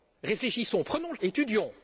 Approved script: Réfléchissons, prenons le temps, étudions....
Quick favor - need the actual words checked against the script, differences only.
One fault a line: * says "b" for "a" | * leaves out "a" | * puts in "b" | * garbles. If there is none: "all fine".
* leaves out "temps"